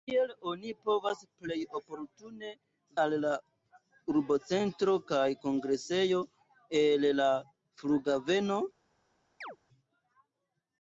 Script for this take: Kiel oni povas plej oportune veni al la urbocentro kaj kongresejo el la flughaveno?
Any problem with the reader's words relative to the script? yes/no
yes